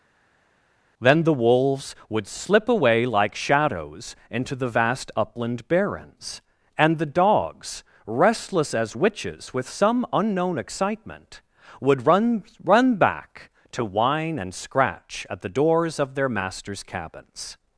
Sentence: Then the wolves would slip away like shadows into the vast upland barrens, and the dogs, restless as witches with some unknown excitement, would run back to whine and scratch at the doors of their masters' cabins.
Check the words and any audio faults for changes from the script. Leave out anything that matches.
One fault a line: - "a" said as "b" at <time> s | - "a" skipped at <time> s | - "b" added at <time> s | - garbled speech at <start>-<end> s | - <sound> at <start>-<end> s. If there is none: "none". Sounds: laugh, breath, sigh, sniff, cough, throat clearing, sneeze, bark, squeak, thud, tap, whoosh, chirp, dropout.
- "run" added at 12.6 s